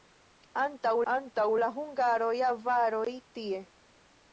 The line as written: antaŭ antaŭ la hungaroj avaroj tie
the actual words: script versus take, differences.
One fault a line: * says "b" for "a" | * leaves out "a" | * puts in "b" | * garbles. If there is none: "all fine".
all fine